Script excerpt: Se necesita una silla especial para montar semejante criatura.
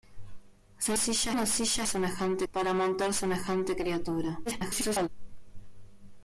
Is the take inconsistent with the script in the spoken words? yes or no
yes